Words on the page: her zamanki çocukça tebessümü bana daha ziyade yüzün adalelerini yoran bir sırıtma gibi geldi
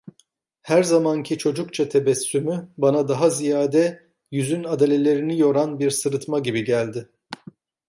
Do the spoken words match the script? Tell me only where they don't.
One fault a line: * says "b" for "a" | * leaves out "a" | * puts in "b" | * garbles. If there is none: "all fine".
all fine